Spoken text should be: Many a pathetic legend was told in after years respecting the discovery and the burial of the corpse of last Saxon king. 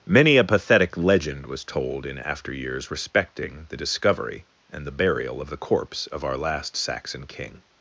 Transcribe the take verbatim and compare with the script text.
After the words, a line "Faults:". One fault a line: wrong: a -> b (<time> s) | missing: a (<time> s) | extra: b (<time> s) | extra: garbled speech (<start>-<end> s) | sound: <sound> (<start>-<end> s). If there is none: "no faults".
Many a pathetic legend was told in after years respecting the discovery and the burial of the corpse of our last Saxon king.
Faults:
extra: our (6.2 s)